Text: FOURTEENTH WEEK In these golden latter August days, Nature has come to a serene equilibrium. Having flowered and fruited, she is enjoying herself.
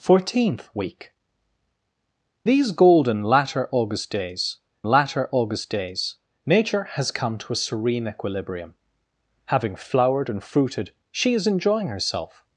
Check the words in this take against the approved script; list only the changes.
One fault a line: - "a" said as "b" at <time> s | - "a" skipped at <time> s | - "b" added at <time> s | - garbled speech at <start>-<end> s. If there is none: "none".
- "In" skipped at 1.1 s
- "latter August days" added at 4.8 s